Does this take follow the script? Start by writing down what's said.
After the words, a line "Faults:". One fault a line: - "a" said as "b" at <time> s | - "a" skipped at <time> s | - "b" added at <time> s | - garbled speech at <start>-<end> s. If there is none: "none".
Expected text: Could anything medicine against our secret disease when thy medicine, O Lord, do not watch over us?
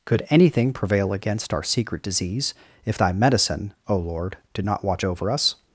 Could anything prevail against our secret disease if thy medicine, O Lord, did not watch over us?
Faults:
- "medicine" said as "prevail" at 0.7 s
- "when" said as "if" at 2.9 s
- "do" said as "did" at 4.5 s